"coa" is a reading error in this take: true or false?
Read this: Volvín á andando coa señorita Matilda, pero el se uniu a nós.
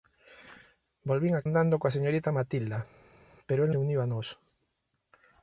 false